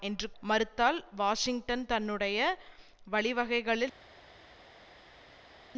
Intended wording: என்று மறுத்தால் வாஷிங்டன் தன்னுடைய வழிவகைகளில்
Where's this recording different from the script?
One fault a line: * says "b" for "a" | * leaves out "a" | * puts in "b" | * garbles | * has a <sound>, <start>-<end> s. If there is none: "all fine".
all fine